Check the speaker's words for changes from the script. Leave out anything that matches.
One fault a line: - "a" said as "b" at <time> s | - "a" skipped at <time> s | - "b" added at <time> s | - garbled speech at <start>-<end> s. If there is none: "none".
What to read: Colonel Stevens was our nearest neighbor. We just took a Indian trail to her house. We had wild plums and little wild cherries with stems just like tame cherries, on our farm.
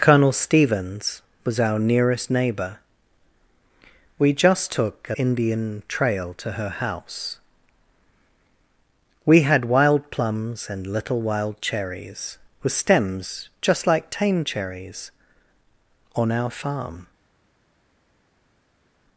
none